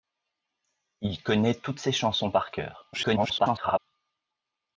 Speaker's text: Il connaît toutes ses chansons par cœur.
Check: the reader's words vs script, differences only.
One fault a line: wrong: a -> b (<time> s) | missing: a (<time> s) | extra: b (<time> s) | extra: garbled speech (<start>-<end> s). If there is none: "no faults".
extra: garbled speech (2.9-3.8 s)